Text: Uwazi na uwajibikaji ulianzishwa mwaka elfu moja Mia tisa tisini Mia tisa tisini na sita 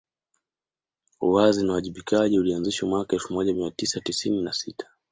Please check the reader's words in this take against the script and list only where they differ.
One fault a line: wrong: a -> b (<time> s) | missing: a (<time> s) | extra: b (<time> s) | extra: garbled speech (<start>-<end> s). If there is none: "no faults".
missing: Mia tisa tisini (4.4 s)